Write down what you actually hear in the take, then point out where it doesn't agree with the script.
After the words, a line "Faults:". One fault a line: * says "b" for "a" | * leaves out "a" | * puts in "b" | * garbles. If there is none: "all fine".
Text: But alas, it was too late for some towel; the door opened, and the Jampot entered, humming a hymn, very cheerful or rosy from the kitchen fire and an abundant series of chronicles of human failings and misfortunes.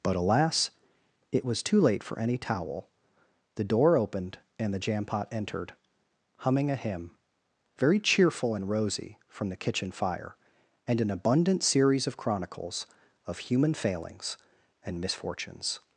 But alas, it was too late for any towel; the door opened, and the Jampot entered, humming a hymn, very cheerful and rosy from the kitchen fire and an abundant series of chronicles of human failings and misfortunes.
Faults:
* says "any" for "some"
* says "and" for "or"